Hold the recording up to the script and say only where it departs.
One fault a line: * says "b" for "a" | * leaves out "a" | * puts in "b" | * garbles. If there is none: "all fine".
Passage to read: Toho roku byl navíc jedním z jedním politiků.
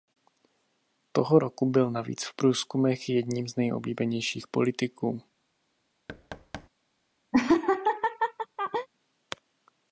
* puts in "v průzkumech"
* says "nejoblíbenějších" for "jedním"